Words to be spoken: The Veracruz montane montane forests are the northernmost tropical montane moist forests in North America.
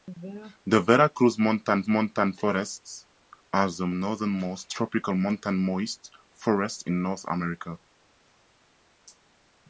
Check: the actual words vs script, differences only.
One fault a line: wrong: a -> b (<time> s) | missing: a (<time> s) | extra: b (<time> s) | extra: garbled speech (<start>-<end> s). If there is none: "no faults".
no faults